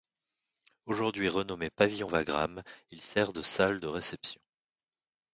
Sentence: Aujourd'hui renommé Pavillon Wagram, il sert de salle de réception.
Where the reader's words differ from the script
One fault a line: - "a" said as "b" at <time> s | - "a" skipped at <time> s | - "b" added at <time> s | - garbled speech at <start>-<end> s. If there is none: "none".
none